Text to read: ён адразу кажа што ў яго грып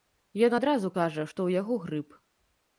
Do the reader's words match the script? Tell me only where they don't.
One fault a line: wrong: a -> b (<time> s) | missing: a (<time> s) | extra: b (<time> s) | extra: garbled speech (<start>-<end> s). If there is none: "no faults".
no faults